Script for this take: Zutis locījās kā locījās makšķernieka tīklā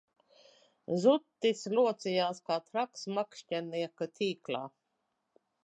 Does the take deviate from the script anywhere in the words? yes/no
yes